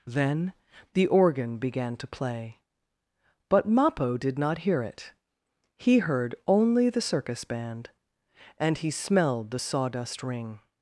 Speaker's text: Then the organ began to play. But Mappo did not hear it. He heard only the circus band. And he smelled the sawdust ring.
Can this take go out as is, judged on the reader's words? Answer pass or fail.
pass